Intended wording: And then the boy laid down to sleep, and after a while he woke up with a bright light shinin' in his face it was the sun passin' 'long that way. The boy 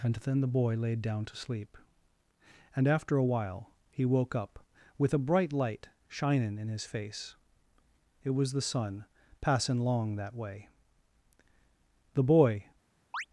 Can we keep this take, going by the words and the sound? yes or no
no